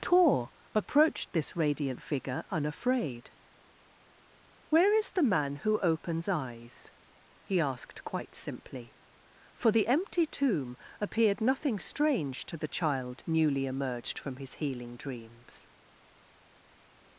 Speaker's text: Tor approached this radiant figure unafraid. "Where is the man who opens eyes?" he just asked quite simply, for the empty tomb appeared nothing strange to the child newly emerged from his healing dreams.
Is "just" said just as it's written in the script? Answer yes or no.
no